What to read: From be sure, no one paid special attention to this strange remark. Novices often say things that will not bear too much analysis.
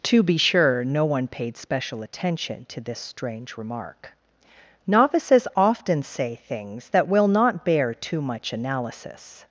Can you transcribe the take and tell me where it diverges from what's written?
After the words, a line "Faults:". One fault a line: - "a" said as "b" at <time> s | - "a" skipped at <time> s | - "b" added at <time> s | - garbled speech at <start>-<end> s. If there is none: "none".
To be sure, no one paid special attention to this strange remark. Novices often say things that will not bear too much analysis.
Faults:
- "From" said as "To" at 0.0 s